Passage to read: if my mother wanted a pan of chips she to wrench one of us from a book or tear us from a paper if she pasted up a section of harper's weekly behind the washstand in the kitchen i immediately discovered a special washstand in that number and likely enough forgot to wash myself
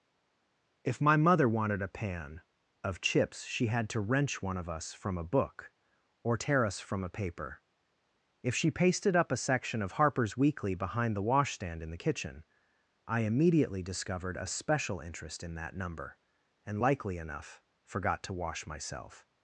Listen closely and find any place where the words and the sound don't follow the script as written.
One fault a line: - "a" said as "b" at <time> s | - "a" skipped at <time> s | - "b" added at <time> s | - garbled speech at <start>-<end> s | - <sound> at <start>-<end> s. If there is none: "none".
- "had" added at 3.7 s
- "washstand" said as "interest" at 15.0 s